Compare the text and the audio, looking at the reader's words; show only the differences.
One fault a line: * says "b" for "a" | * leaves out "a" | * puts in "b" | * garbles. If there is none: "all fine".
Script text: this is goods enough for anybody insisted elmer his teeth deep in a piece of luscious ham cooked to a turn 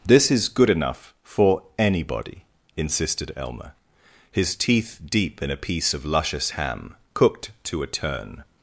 * says "good" for "goods"